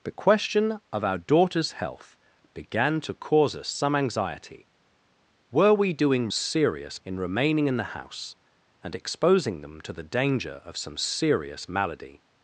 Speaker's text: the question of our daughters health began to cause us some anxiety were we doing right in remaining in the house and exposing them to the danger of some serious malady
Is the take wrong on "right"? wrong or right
wrong